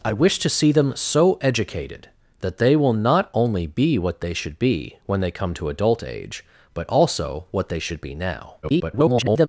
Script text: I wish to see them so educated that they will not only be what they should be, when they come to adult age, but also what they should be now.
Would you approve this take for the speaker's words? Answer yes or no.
no